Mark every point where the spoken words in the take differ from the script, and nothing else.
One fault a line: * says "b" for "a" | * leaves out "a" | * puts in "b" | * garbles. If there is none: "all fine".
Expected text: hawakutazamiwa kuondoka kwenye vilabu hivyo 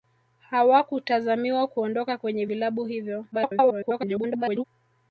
* garbles